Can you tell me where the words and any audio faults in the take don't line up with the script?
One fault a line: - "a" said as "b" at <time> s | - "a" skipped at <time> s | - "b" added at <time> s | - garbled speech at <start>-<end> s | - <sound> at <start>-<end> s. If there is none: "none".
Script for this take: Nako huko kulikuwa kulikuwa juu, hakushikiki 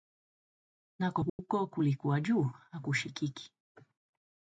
- dropout at 1.3-1.4 s
- "kulikuwa" skipped at 2.2 s